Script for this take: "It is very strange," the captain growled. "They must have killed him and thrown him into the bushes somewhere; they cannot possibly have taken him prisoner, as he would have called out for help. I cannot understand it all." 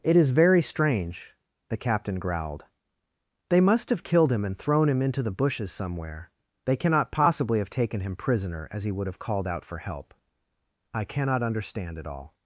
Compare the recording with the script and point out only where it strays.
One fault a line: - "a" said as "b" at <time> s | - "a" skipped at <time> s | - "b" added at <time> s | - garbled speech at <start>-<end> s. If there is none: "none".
none